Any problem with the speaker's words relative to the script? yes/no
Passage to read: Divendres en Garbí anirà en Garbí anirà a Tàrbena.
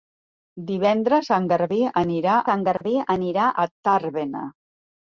no